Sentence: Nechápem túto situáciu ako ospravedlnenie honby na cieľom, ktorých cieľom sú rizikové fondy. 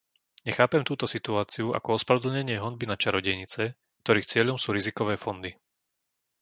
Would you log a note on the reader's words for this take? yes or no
yes